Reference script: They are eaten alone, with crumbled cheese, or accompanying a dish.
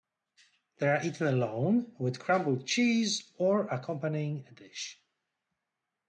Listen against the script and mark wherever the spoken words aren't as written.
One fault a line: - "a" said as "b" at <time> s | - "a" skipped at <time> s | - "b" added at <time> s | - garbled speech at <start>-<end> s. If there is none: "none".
none